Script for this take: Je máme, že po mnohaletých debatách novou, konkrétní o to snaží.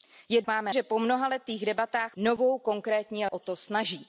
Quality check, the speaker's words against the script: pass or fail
pass